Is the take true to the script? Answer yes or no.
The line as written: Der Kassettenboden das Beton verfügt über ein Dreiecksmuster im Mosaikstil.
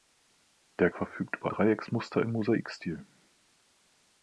no